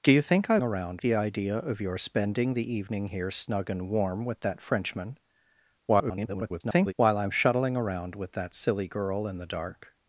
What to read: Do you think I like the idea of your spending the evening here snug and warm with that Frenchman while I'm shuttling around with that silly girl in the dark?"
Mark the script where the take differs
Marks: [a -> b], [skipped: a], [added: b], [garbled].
Do you think I [like -> around] the idea of your spending the evening here snug and warm with that Frenchman [garbled] while I'm shuttling around with that silly girl in the dark?"